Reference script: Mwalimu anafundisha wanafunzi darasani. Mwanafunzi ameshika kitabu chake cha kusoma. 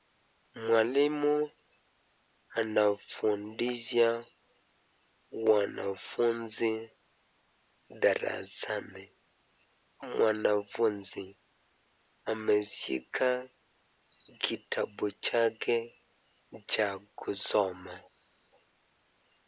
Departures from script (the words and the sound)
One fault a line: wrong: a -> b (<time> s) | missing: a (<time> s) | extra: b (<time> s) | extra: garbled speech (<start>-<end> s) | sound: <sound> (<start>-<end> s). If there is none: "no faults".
no faults